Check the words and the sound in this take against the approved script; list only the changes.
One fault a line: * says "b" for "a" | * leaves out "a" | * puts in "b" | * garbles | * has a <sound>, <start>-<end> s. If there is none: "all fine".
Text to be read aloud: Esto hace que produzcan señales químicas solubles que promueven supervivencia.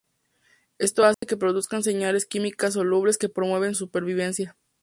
* has a dropout, 1.1-1.2 s